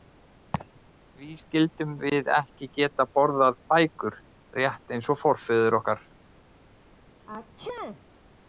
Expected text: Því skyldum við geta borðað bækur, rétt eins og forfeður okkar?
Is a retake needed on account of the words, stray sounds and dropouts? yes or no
yes